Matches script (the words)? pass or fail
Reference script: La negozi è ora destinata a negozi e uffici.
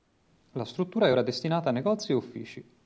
fail